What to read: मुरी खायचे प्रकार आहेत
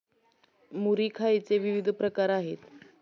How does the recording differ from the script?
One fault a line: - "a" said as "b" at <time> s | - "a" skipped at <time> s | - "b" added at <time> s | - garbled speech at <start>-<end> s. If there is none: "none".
- "विविध" added at 1.6 s